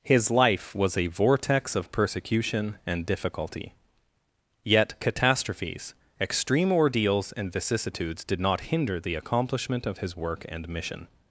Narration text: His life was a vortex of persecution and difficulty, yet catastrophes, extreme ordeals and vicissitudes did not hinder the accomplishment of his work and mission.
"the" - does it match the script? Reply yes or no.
yes